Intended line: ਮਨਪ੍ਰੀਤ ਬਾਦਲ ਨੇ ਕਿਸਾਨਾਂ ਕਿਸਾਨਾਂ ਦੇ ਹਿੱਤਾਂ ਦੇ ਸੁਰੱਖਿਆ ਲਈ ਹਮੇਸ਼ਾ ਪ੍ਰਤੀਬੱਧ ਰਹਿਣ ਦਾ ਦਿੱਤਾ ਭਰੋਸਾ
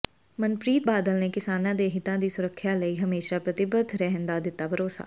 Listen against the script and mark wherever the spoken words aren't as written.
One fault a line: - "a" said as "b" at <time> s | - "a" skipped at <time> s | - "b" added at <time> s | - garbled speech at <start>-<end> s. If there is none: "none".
- "ਕਿਸਾਨਾਂ" skipped at 1.7 s
- "ਦੇ" said as "ਦੀ" at 2.2 s